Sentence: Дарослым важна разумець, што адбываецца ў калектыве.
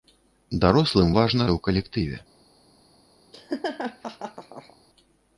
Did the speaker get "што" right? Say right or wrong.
wrong